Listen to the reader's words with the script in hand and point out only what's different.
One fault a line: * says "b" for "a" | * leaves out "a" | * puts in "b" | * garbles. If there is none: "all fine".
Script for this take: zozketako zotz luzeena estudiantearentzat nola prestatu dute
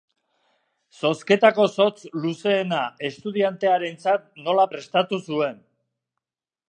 * says "zuen" for "dute"